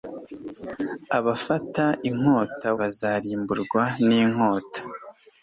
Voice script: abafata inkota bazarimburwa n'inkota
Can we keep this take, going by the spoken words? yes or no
yes